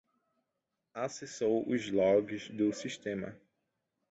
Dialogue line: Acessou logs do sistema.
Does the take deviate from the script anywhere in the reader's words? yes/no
yes